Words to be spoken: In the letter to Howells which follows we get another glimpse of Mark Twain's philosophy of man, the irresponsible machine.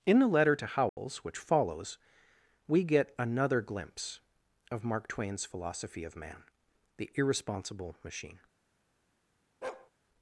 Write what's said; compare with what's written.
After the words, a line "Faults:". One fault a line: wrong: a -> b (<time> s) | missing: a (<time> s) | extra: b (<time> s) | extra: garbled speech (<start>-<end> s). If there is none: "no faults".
In the letter to Howells which follows we get another glimpse of Mark Twain's philosophy of man, the irresponsible machine.
Faults:
no faults